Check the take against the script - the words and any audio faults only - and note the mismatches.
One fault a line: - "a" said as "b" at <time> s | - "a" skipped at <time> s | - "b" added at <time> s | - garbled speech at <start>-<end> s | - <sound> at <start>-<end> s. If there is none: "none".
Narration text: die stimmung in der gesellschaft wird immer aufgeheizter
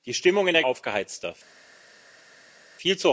- "gesellschaft wird immer" skipped at 0.6 s